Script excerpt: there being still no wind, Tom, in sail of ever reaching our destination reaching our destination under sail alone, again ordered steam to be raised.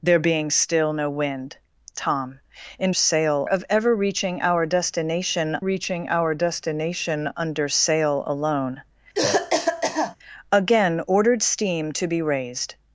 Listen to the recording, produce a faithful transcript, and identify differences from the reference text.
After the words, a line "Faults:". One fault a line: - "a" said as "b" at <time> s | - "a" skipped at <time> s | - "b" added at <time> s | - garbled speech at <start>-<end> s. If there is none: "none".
there being still no wind, Tom, in sail of ever reaching our destination reaching our destination under sail alone, again ordered steam to be raised.
Faults:
none